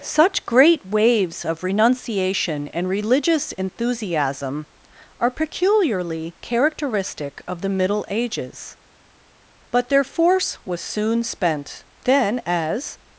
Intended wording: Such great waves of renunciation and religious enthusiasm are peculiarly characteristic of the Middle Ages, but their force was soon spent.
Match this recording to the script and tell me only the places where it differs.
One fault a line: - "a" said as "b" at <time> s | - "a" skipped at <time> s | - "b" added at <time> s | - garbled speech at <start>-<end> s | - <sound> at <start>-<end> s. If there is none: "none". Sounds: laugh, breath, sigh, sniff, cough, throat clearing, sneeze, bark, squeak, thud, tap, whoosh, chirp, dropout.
- "Then as" added at 12.0 s